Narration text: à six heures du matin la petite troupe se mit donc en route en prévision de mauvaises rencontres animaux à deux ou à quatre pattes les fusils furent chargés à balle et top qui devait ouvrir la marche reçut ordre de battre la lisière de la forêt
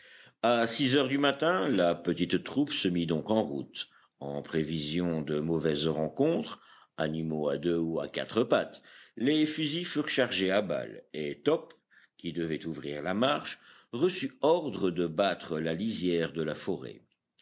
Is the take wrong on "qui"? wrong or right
right